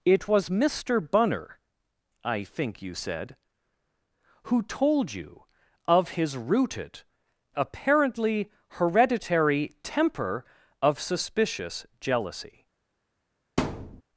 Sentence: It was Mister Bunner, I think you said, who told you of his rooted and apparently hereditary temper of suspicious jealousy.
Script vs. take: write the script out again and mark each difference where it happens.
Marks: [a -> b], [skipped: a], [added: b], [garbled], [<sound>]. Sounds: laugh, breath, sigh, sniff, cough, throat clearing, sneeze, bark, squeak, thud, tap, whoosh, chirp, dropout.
It was Mister Bunner, I think you said, who told you of his rooted [skipped: and] apparently hereditary temper of suspicious jealousy. [thud]